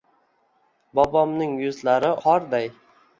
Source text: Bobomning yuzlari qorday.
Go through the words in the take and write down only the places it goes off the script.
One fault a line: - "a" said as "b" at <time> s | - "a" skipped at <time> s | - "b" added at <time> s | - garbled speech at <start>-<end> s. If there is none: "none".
none